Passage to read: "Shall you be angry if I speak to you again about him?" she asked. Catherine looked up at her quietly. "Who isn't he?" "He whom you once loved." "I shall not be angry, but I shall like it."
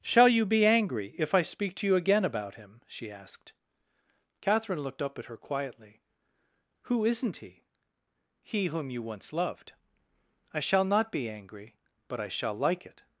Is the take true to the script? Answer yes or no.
yes